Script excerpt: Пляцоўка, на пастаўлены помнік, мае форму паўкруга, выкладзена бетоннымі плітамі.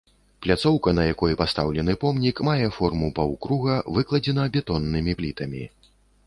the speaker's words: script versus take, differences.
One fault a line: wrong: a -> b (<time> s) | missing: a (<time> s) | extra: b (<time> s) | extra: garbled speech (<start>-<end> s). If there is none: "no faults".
extra: якой (1.1 s)